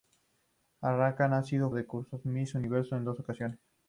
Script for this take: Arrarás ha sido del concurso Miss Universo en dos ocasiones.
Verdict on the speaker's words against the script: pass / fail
pass